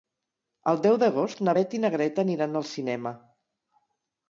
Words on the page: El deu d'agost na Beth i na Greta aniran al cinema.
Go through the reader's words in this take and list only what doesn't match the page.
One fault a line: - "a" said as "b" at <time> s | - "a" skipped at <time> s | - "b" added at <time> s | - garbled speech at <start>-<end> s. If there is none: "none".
none